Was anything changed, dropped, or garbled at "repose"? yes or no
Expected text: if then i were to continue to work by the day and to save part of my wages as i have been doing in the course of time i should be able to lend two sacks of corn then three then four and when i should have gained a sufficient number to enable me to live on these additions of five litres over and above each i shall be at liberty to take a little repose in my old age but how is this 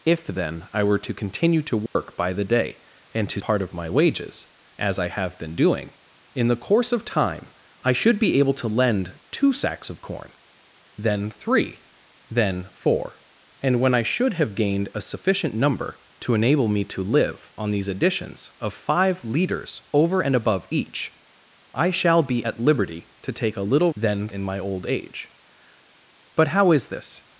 yes